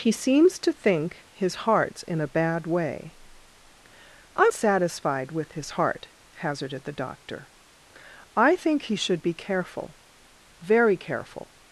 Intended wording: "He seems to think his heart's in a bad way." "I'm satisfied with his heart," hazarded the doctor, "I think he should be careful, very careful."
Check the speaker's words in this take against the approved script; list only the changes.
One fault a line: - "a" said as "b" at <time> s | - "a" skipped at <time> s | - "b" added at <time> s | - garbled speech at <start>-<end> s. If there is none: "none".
none